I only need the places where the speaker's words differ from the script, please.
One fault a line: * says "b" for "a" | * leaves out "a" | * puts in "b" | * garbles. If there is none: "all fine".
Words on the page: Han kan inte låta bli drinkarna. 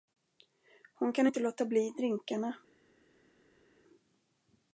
* says "Hon" for "Han"